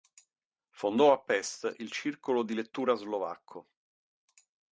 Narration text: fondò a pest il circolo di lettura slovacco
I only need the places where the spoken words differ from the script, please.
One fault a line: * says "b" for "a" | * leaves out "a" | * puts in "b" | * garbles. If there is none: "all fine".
all fine